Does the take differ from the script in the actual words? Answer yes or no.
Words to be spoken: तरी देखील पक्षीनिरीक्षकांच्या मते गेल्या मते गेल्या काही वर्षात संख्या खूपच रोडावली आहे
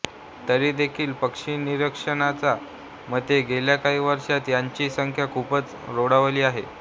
yes